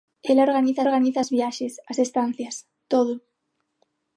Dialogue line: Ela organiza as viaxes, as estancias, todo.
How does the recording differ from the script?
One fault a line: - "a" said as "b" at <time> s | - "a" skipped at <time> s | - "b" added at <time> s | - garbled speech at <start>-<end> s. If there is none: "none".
- "organiza" added at 0.8 s